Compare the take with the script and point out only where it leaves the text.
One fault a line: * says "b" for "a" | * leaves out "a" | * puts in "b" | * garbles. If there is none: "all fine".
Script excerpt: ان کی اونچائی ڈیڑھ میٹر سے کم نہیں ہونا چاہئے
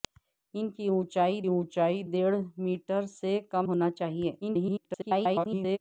* puts in "اونچائی"
* leaves out "نہیں"
* garbles